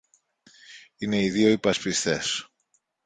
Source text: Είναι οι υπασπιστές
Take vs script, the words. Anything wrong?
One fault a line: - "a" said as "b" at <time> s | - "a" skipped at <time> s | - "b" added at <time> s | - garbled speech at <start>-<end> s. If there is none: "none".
- "δυο" added at 1.3 s